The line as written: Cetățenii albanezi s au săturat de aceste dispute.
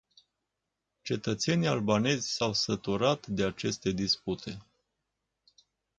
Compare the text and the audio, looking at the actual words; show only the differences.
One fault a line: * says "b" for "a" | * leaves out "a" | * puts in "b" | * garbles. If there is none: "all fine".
all fine